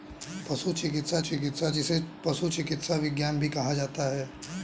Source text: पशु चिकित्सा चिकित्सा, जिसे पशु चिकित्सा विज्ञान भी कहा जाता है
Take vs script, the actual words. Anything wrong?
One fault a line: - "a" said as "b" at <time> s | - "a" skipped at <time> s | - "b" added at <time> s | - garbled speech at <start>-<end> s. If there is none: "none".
none